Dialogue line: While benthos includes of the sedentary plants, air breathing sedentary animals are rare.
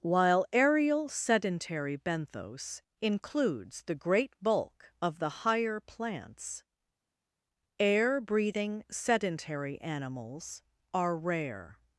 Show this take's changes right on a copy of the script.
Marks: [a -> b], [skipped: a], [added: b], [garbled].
While [added: aerial sedentary] benthos includes [added: the great bulk] of the [sedentary -> higher] plants, air breathing sedentary animals are rare.